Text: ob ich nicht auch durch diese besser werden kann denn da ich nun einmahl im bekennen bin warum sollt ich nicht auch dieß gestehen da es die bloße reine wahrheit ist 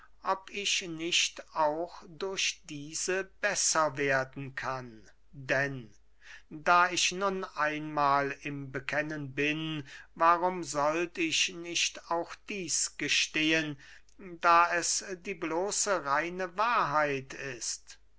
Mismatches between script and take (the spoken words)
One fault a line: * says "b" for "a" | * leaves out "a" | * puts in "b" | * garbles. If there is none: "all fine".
all fine